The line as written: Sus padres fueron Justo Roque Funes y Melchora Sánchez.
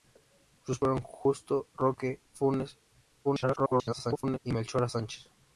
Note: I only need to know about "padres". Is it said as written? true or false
false